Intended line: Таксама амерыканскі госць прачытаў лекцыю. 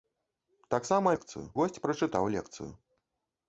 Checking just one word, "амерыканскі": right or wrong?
wrong